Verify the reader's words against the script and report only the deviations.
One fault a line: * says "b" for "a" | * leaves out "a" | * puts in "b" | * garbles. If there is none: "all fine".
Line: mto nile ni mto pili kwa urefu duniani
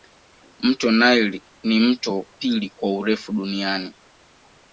all fine